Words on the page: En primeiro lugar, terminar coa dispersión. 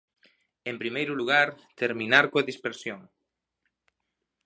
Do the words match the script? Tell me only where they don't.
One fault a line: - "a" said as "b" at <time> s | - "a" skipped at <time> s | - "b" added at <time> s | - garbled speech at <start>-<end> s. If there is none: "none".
none